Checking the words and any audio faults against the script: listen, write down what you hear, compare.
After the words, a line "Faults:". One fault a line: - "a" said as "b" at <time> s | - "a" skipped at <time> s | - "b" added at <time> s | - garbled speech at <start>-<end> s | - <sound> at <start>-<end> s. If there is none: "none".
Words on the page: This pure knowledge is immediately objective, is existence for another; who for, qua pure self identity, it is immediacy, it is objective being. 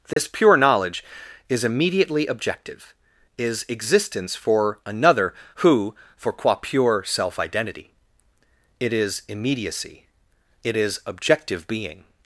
This pure knowledge is immediately objective, is existence for another; who for, qua pure self identity, it is immediacy, it is objective being.
Faults:
- dropout at 0.1-0.2 s